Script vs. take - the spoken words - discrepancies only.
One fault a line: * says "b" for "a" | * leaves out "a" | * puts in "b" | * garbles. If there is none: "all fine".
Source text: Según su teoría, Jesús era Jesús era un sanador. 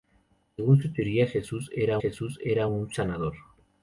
all fine